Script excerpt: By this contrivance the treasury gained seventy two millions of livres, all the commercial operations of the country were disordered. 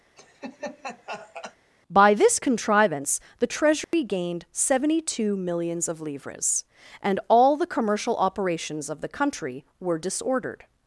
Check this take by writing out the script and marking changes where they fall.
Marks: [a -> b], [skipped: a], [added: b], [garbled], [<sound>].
[laugh] By this contrivance the treasury [dropout] gained seventy two millions of livres, [added: and] all the commercial operations of the country were disordered.